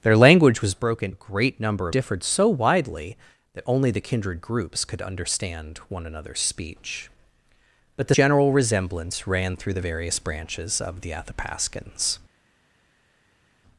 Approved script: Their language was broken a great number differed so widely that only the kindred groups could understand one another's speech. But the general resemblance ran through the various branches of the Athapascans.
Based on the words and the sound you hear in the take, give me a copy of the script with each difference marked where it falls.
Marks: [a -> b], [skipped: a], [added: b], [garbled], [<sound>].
Their language was broken a great number differed so widely that only the kindred groups could understand one another's speech. But the general resemblance ran through the various branches of the Athapascans.